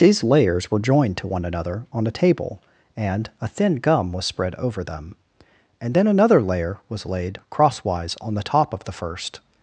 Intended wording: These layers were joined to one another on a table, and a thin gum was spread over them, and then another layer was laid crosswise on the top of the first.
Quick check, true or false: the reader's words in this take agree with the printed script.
true